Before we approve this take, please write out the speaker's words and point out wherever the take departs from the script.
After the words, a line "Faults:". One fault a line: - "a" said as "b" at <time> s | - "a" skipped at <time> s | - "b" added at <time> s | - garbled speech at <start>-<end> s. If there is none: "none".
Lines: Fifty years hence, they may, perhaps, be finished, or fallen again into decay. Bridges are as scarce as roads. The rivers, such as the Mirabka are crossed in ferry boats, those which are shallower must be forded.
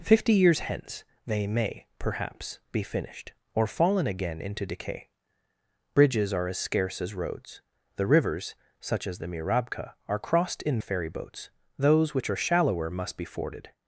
Fifty years hence, they may, perhaps, be finished, or fallen again into decay. Bridges are as scarce as roads. The rivers, such as the Mirabka are crossed in ferry boats, those which are shallower must be forded.
Faults:
none